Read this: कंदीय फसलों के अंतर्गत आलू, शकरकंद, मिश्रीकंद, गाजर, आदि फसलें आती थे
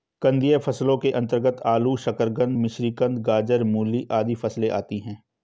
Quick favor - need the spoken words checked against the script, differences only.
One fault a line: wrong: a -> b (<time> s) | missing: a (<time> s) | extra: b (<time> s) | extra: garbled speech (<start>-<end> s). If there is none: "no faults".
extra: मूली (3.6 s)
wrong: थे -> हैं (5.0 s)